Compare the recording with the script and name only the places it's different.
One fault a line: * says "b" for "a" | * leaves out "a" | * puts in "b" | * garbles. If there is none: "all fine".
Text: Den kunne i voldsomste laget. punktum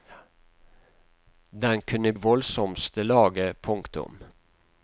all fine